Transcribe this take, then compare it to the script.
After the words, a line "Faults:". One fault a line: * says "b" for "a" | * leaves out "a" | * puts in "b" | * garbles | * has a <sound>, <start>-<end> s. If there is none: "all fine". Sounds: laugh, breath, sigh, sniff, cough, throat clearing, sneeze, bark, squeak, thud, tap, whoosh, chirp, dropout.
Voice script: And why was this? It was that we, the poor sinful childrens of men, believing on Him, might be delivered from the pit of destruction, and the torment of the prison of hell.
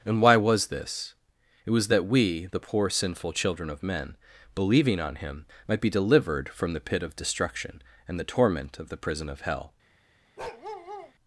And why was this? It was that we, the poor sinful children of men, believing on Him, might be delivered from the pit of destruction, and the torment of the prison of hell.
Faults:
* says "children" for "childrens"
* has a bark, 10.4-11.1 s